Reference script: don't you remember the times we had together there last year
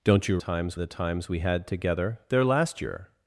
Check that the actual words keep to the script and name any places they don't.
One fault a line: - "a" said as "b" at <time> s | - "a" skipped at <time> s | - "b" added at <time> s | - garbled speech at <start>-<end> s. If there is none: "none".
- "remember" said as "times" at 0.4 s